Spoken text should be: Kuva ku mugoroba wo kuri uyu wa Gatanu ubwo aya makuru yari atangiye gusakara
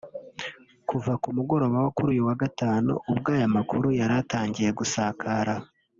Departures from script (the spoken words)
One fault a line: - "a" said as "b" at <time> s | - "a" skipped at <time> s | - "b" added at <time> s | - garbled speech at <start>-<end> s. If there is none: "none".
none